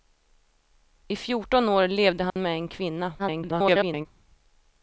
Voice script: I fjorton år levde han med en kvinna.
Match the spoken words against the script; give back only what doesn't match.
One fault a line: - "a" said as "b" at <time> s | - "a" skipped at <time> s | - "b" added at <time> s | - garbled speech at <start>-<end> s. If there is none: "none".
- garbled speech at 3.2-4.1 s